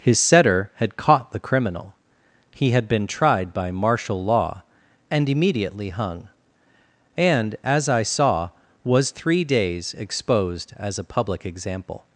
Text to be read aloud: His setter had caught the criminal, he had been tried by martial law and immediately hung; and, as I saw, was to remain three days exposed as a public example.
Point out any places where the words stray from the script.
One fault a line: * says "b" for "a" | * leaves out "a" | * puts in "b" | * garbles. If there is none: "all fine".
* leaves out "to remain"